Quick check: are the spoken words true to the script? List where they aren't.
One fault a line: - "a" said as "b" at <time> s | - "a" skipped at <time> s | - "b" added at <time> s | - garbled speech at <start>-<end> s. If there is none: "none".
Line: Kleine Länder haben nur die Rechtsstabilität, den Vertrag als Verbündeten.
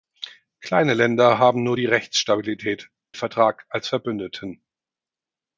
- "den" skipped at 2.9 s